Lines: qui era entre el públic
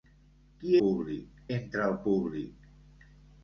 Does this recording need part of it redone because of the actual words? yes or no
yes